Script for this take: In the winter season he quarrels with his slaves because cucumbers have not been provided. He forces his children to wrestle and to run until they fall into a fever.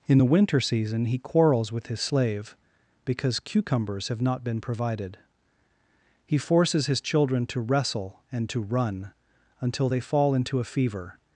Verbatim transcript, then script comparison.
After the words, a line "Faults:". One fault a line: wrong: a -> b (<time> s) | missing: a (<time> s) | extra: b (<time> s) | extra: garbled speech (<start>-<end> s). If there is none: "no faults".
In the winter season he quarrels with his slave because cucumbers have not been provided. He forces his children to wrestle and to run until they fall into a fever.
Faults:
wrong: slaves -> slave (2.0 s)